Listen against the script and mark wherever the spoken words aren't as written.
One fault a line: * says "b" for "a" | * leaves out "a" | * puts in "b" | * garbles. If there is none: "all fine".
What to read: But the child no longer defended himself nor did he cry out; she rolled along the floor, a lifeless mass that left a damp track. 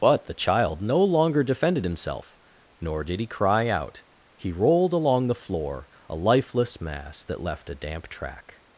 * says "he" for "she"